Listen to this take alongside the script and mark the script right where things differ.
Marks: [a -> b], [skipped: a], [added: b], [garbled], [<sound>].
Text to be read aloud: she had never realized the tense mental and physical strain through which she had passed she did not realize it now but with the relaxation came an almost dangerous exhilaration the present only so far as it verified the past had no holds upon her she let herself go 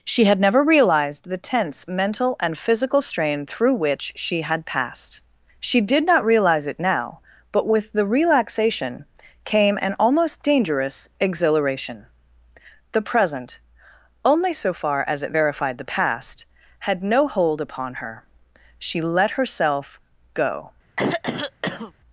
she had never realized the tense mental and physical strain through which she had passed she did not realize it now but with the relaxation came an almost dangerous exhilaration the present only so far as it verified the past had no [holds -> hold] upon her she let herself go [throat clearing]